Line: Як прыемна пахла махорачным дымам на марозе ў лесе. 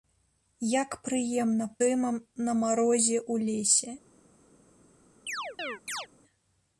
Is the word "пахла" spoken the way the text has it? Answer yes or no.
no